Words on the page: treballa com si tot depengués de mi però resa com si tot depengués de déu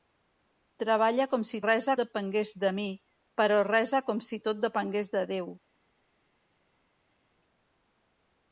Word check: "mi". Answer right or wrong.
right